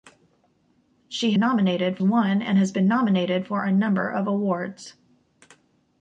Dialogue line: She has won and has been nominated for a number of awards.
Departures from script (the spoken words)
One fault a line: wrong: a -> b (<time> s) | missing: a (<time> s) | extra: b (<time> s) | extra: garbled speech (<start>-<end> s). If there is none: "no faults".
wrong: has -> nominated (1.4 s)